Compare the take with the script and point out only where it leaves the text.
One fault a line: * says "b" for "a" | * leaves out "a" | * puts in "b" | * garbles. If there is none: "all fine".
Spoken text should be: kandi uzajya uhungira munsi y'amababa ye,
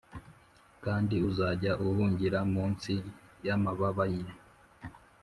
all fine